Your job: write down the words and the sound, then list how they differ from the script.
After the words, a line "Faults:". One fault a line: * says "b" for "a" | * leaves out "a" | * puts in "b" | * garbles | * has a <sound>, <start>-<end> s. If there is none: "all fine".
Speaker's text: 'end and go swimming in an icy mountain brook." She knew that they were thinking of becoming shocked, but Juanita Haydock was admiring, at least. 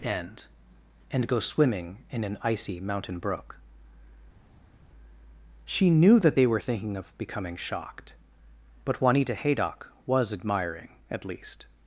'end and go swimming in an icy mountain brook." She knew that they were thinking of becoming shocked, but Juanita Haydock was admiring, at least.
Faults:
all fine